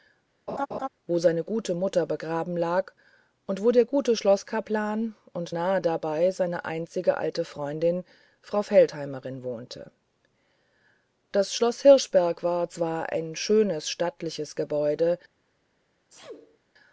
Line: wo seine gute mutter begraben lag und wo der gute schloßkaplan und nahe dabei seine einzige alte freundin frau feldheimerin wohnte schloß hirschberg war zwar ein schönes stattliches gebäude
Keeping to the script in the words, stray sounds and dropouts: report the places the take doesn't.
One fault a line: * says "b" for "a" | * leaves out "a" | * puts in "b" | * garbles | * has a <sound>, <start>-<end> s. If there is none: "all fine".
* has a laugh, 0.5-0.9 s
* puts in "das"
* has a sneeze, 16.1-16.6 s